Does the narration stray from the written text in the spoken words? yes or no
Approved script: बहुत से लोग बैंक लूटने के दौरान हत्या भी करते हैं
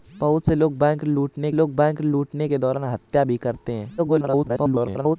yes